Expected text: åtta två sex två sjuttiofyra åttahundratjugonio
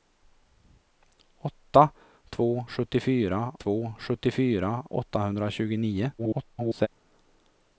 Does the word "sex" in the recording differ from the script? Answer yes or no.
yes